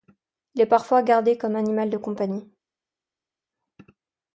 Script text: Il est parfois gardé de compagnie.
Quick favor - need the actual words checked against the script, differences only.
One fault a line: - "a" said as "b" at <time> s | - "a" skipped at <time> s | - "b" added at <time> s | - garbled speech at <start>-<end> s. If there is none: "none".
- "comme animal" added at 1.4 s